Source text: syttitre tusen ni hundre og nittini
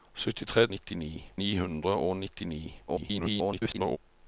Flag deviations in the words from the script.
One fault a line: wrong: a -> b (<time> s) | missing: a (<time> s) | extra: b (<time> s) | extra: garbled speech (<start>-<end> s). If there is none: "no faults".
wrong: tusen -> nittini (0.7 s)
extra: garbled speech (2.9-4.0 s)